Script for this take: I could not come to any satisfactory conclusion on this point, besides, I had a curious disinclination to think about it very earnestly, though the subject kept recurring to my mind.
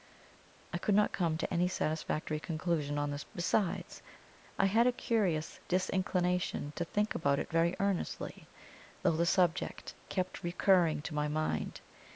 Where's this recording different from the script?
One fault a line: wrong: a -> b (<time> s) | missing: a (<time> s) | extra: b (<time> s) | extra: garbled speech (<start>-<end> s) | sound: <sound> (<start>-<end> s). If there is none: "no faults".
missing: point (3.2 s)